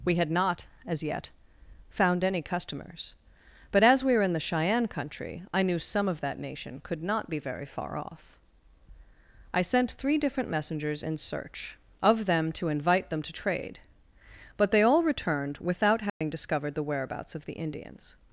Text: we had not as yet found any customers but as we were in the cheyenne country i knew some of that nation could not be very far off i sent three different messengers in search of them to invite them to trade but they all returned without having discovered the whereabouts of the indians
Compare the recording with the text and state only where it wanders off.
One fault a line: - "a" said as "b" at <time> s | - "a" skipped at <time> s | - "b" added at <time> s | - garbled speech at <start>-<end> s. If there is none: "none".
none